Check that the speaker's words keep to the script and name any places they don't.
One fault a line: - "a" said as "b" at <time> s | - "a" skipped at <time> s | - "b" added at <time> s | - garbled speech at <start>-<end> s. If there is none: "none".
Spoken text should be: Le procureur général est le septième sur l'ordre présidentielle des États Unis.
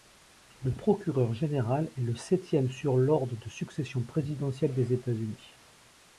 - "de succession" added at 3.4 s